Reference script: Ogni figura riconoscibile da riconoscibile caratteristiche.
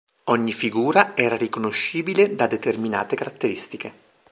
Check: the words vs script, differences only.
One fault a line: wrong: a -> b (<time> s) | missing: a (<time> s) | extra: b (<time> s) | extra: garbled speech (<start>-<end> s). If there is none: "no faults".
extra: era (1.1 s)
wrong: riconoscibile -> determinate (2.5 s)